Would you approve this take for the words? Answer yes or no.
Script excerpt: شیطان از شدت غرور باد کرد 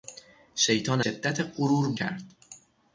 no